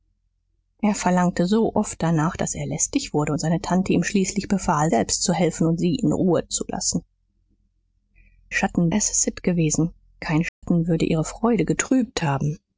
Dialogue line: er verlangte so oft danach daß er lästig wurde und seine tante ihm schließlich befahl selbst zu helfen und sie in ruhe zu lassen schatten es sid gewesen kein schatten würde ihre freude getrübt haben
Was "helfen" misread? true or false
false